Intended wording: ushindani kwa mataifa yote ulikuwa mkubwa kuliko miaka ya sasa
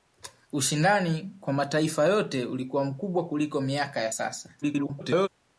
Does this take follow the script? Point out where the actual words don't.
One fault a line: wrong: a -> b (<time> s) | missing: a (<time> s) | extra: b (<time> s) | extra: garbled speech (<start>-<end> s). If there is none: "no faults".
extra: garbled speech (4.6-5.3 s)